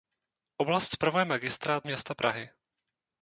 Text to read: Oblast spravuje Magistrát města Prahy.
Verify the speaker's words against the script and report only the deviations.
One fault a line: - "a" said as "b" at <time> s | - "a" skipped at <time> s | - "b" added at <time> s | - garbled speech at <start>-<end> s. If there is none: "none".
none